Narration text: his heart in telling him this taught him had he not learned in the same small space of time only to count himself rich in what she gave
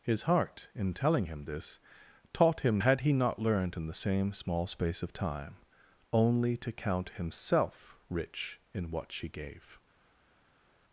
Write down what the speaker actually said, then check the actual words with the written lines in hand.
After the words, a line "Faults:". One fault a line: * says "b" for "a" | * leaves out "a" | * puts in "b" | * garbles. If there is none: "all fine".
his heart in telling him this taught him had he not learned in the same small space of time only to count himself rich in what she gave
Faults:
all fine